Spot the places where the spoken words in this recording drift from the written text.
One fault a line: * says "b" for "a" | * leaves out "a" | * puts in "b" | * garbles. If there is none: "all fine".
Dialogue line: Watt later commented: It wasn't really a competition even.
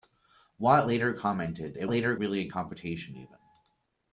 * says "later" for "wasn't"